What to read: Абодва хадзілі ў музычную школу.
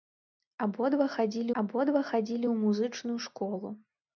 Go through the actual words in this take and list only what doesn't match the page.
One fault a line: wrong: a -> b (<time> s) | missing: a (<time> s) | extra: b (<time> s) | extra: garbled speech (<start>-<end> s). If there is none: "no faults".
extra: абодва хадзілі (1.6 s)